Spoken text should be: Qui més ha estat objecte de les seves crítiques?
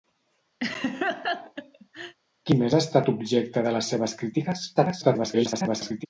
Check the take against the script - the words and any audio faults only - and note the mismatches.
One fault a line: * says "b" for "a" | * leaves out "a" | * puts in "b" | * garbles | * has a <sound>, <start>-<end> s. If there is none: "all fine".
* has a laugh, 0.6-2.2 s
* garbles